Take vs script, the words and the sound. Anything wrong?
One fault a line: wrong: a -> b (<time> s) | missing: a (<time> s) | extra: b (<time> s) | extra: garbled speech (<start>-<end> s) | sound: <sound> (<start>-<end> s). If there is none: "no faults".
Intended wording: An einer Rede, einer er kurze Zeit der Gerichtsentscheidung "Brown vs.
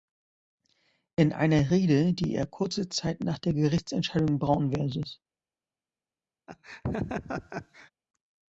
wrong: An -> In (1.1 s)
wrong: einer -> die (2.1 s)
extra: nach (3.2 s)
sound: laugh (6.5-7.9 s)